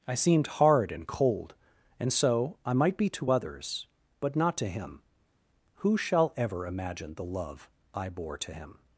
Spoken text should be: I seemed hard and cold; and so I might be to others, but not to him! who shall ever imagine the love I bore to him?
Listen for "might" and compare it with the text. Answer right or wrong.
right